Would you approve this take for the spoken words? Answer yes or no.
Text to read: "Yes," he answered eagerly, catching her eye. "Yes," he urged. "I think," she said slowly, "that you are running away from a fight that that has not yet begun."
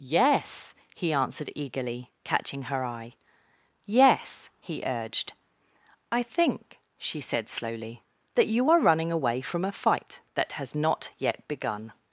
no